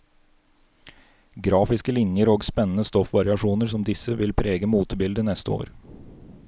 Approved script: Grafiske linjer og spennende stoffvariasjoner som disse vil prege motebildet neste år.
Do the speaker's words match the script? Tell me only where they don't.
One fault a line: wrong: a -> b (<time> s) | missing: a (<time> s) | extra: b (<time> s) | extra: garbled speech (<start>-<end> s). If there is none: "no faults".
no faults